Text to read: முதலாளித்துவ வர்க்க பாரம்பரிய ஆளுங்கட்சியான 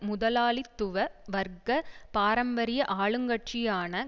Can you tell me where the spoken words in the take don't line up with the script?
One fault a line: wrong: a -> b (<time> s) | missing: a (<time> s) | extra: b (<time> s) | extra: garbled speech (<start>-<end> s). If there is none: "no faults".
no faults